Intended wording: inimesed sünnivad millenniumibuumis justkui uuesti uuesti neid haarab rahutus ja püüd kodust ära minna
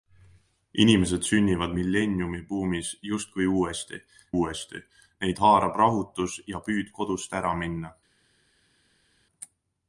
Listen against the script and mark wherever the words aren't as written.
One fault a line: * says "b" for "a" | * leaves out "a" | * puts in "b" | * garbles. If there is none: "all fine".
all fine